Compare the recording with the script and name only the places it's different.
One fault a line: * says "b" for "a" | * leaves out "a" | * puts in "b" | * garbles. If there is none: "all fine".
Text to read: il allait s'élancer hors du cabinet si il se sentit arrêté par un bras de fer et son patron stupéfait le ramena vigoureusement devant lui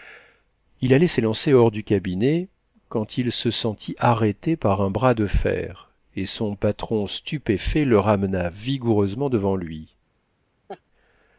* says "quand" for "si"